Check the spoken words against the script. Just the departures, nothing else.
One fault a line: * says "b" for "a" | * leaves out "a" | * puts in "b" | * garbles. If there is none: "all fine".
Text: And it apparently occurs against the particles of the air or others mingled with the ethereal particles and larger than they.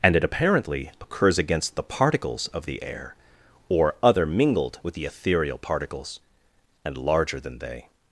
* says "other" for "others"